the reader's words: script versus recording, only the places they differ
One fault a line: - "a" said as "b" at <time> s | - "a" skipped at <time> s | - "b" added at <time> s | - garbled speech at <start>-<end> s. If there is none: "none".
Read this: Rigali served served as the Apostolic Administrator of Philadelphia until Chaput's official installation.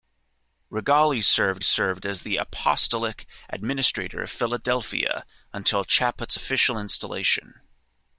none